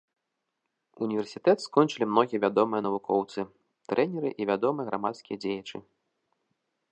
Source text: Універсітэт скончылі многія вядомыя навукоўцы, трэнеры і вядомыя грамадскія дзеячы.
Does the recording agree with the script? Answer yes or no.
yes